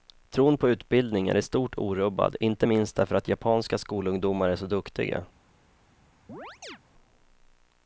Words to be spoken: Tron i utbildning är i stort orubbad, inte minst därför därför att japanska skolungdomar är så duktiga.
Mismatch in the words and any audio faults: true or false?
true